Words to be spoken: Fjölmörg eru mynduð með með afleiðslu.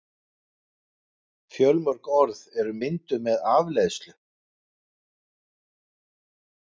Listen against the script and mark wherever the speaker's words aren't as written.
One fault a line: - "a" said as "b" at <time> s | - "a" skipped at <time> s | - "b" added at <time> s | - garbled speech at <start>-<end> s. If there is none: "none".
- "orð" added at 2.2 s
- "með" skipped at 3.4 s